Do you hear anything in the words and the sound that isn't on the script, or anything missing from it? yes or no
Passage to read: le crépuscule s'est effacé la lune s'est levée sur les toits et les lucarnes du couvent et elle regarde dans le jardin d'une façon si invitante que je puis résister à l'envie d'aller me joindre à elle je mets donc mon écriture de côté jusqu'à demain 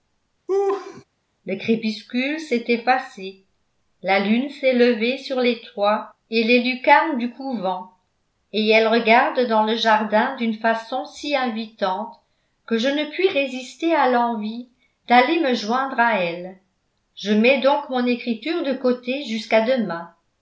yes